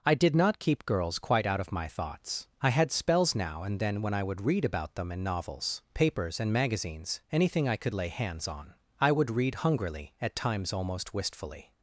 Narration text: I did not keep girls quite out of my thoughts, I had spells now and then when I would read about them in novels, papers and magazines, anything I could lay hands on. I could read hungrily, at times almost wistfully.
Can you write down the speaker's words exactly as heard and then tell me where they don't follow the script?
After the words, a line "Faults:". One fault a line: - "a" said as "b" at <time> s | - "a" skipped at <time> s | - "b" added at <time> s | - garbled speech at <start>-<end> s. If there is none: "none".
I did not keep girls quite out of my thoughts, I had spells now and then when I would read about them in novels, papers and magazines, anything I could lay hands on. I would read hungrily, at times almost wistfully.
Faults:
- "could" said as "would" at 9.1 s